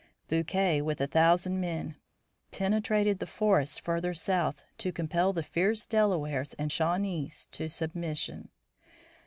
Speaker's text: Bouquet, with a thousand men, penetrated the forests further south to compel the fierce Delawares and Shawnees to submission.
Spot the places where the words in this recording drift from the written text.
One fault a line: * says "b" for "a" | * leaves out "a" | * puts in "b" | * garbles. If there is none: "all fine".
all fine